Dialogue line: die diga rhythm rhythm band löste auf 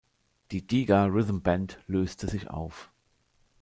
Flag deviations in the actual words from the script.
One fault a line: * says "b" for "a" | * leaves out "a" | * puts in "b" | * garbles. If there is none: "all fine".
* leaves out "rhythm"
* puts in "sich"